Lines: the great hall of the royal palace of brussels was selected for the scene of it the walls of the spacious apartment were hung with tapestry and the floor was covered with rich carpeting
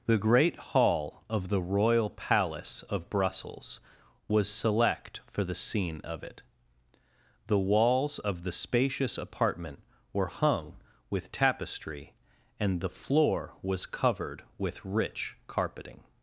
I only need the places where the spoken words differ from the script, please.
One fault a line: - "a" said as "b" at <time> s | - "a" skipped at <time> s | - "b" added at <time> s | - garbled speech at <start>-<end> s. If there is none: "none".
- "selected" said as "select" at 4.5 s